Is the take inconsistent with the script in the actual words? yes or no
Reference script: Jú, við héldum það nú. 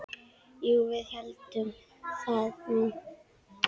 no